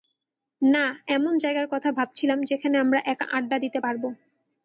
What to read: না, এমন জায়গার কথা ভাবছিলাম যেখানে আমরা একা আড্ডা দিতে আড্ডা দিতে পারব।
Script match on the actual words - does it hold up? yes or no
no